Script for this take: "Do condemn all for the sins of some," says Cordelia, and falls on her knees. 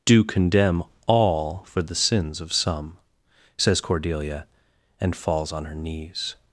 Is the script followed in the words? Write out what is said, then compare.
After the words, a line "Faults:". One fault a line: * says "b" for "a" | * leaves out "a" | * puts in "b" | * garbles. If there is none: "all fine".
"Do condemn all for the sins of some," says Cordelia, and falls on her knees.
Faults:
all fine